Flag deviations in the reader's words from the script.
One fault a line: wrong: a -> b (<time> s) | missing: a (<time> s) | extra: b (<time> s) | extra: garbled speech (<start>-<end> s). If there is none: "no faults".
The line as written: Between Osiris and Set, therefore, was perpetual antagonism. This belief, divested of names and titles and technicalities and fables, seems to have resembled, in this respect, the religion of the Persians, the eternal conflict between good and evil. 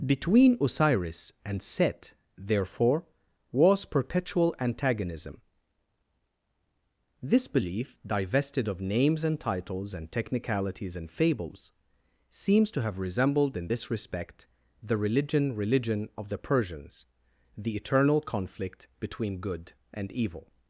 extra: religion (15.6 s)